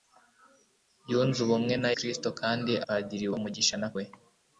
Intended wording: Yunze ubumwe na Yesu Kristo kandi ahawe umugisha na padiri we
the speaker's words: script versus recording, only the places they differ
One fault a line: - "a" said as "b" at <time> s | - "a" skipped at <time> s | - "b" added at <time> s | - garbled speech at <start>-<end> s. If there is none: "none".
- "Yesu" skipped at 1.9 s
- "ahawe" said as "padiri" at 2.9 s
- "padiri" skipped at 3.9 s